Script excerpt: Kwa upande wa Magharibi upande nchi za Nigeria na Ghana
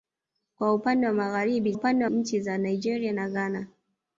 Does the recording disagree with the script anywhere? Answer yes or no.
no